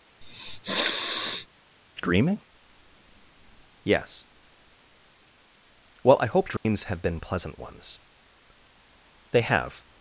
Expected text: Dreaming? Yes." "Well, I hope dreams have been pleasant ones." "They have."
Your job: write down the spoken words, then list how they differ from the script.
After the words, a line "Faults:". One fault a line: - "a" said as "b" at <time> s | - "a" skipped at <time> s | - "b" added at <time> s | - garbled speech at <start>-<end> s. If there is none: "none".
Dreaming? Yes." "Well, I hope dreams have been pleasant ones." "They have."
Faults:
none